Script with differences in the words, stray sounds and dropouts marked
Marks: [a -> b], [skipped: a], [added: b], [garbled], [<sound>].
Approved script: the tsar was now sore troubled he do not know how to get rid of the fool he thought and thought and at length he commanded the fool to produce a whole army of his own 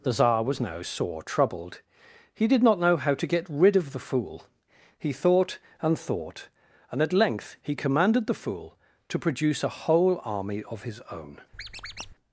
the tsar was now sore troubled he [do -> did] not know how to get rid of the fool he thought and thought and at length he commanded the fool to produce a whole army of his own [squeak]